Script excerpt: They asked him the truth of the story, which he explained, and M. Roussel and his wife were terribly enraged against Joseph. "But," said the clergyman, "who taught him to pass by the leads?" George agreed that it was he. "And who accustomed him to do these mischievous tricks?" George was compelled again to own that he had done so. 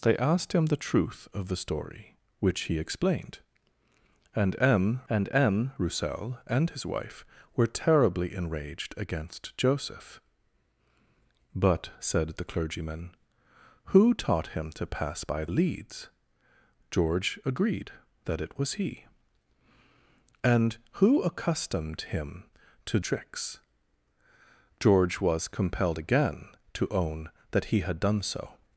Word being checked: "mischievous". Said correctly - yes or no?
no